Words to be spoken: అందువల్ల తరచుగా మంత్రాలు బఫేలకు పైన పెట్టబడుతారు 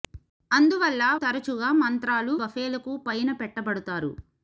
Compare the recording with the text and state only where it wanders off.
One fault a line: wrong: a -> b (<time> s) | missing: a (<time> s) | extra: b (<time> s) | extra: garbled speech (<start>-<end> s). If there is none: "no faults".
no faults